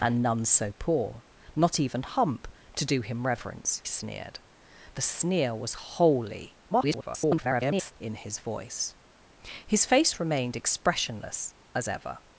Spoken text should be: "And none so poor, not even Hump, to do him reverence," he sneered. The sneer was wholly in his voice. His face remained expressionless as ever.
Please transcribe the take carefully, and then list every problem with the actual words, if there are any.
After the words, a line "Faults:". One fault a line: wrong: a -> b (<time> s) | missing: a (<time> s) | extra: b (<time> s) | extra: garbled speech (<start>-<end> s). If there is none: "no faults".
"And none so poor, not even Hump, to do him reverence," sneered. The sneer was wholly [garbled] in his voice. His face remained expressionless as ever.
Faults:
missing: he (3.8 s)
extra: garbled speech (6.7-7.9 s)